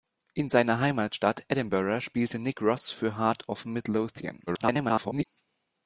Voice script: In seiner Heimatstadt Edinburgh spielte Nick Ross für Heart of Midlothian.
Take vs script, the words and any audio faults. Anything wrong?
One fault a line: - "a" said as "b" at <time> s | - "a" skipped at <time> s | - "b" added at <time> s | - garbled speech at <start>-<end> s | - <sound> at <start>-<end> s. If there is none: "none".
- garbled speech at 4.5-5.3 s